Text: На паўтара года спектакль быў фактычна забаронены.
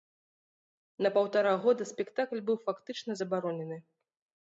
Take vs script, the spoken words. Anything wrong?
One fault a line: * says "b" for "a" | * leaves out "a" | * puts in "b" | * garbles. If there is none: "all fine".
all fine